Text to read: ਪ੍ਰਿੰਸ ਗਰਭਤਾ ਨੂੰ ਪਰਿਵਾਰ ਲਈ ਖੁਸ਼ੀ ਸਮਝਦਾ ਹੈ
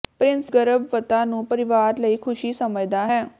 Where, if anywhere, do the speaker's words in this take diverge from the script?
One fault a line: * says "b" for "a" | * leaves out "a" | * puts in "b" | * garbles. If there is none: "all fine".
all fine